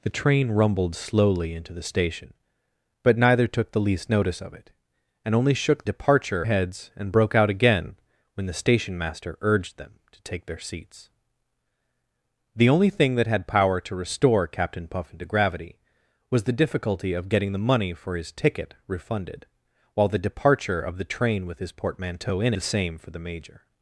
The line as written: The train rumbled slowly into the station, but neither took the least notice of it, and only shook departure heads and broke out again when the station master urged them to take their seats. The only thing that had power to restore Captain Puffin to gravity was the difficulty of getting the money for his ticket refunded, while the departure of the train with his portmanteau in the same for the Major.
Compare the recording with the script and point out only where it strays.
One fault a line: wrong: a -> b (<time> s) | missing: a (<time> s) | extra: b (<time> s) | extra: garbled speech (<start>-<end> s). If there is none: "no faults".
no faults